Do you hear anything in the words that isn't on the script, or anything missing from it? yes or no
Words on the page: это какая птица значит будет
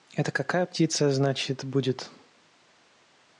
no